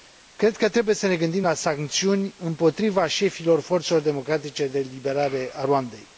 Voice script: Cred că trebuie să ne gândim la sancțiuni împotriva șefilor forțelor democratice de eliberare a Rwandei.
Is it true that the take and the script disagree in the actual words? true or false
false